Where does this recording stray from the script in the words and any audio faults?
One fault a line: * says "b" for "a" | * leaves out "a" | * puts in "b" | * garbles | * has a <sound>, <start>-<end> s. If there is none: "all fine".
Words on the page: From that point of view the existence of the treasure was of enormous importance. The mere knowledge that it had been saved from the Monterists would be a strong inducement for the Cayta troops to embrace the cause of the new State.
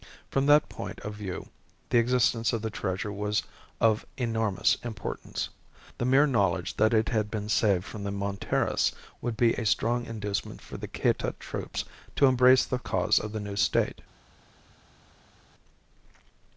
all fine